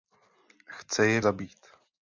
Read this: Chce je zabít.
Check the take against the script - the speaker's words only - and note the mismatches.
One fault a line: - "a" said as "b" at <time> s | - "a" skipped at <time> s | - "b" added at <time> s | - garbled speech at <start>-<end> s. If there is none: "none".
none